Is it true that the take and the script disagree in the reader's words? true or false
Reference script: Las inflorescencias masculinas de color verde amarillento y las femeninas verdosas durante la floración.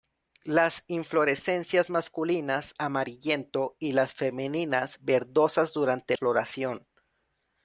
true